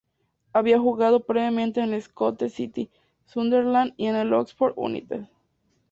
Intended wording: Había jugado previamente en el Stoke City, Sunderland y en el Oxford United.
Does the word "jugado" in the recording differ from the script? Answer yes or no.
no